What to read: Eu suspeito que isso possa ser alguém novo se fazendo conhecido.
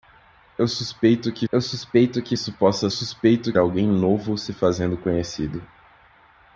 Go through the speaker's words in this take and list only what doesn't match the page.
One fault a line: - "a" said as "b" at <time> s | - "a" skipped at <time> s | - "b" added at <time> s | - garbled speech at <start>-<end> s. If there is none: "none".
- "eu suspeito que" added at 1.5 s
- "ser" said as "suspeito" at 2.9 s